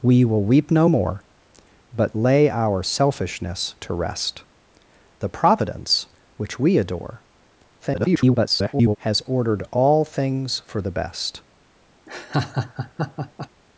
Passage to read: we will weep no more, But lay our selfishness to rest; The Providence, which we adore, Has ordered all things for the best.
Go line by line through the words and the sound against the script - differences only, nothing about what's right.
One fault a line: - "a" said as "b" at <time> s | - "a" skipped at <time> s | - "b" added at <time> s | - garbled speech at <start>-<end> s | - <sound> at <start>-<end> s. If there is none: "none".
- garbled speech at 7.8-9.0 s
- laugh at 12.1-13.5 s